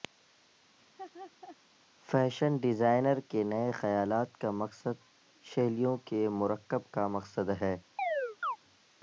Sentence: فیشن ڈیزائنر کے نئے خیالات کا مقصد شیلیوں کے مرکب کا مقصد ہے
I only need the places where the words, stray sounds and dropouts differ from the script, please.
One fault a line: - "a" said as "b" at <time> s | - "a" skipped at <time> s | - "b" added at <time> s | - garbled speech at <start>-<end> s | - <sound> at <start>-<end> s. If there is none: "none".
- laugh at 0.8-1.6 s
- chirp at 8.0-8.6 s